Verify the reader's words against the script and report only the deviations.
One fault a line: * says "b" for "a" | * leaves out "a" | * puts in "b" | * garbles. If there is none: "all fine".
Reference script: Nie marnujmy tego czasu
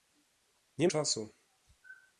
* leaves out "marnujmy tego"